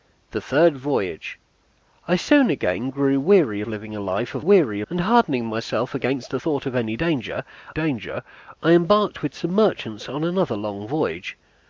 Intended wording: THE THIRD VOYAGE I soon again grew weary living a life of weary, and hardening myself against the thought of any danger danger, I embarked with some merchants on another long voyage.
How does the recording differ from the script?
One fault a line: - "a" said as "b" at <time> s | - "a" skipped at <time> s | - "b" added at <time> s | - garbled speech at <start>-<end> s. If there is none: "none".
none